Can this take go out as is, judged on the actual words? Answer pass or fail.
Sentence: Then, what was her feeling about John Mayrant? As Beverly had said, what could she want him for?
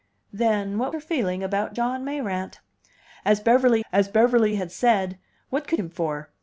fail